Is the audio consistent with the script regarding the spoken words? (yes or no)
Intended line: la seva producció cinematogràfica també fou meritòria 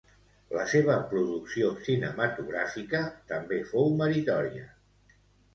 yes